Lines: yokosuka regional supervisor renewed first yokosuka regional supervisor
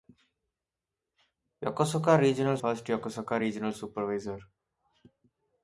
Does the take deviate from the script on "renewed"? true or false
true